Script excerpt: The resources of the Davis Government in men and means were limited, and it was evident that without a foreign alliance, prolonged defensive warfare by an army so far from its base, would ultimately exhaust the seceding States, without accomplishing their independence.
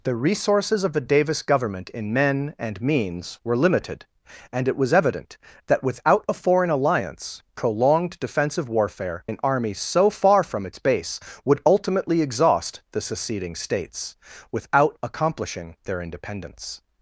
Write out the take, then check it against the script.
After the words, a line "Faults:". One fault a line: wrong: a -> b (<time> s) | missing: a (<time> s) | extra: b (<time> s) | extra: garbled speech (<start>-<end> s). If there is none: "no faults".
The resources of the Davis Government in men and means were limited, and it was evident that without a foreign alliance, prolonged defensive warfare an army so far from its base, would ultimately exhaust the seceding States, without accomplishing their independence.
Faults:
missing: by (9.2 s)